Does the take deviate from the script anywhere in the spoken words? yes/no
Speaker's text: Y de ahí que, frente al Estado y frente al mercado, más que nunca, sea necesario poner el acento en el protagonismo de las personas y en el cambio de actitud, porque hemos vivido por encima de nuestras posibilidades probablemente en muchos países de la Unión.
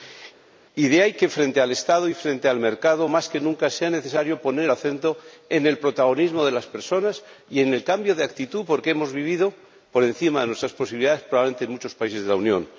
no